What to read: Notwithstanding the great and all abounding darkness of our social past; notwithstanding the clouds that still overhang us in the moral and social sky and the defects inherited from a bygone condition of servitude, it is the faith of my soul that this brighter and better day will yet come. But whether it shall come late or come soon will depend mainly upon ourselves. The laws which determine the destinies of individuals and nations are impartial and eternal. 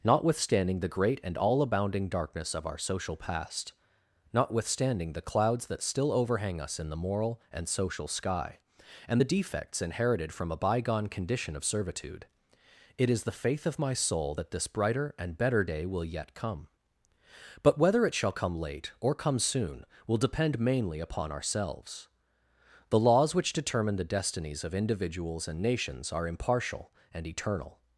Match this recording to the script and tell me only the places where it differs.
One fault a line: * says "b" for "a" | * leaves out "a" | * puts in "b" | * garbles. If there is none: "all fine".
all fine